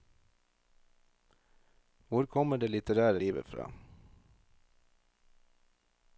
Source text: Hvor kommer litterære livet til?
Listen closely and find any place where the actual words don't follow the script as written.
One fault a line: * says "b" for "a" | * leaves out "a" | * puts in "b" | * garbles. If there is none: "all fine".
* puts in "det"
* says "fra" for "til"